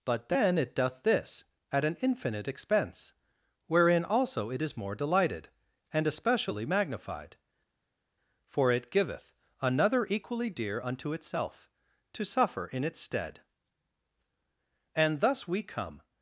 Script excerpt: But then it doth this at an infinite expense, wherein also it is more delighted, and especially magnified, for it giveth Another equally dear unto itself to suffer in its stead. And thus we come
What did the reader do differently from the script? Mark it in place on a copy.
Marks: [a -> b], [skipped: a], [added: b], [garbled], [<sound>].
But then it doth this at an infinite expense, wherein also it is more delighted, and especially magnified, for it giveth Another equally dear unto itself to suffer in its stead. And thus we come